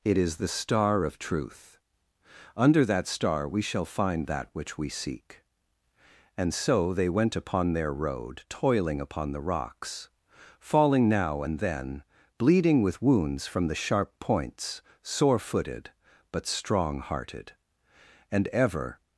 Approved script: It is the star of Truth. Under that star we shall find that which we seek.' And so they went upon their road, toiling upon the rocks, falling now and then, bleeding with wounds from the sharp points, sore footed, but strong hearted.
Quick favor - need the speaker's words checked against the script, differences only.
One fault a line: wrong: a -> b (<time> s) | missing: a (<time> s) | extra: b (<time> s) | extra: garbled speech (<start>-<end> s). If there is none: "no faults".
extra: And ever (18.3 s)